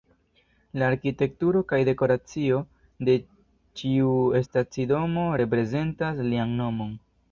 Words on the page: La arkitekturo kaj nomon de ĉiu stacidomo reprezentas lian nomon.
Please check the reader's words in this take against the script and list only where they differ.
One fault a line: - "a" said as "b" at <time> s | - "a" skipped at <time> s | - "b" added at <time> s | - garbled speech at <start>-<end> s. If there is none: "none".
- "nomon" said as "dekoracio" at 1.9 s